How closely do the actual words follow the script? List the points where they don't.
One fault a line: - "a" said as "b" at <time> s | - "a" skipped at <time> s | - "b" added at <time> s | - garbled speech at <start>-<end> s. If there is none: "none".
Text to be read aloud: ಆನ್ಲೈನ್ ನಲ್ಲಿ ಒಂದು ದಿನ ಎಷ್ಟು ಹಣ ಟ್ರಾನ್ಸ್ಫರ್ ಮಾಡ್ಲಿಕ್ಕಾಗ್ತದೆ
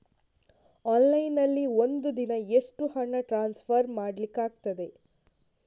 none